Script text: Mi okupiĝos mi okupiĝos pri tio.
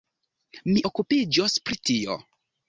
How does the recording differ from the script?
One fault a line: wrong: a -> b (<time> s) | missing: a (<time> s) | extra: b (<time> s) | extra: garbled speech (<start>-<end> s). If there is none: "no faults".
missing: mi okupiĝos (1.6 s)